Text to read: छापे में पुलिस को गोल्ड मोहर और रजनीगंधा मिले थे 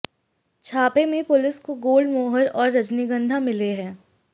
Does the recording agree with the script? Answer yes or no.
no